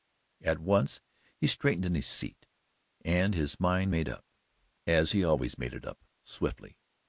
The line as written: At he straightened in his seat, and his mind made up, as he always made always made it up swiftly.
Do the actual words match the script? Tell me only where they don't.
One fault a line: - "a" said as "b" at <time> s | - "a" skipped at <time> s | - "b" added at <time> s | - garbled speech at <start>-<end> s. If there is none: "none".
- "once" added at 0.6 s
- "always made" skipped at 5.7 s